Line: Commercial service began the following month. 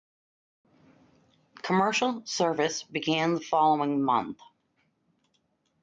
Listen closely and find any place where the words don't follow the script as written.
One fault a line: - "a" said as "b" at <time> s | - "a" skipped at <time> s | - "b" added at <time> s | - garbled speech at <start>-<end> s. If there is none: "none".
none